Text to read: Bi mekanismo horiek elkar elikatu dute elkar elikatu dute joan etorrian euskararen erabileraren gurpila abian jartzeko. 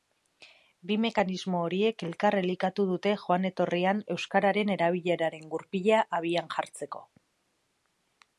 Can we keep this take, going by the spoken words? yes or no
no